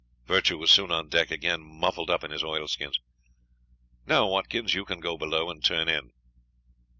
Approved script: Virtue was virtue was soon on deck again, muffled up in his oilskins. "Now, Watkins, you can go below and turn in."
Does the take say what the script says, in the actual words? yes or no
no